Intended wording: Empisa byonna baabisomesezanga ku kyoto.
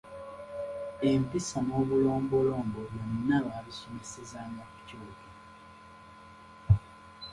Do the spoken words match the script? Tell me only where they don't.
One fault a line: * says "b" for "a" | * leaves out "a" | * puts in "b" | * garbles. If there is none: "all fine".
* puts in "n'obulombolombo"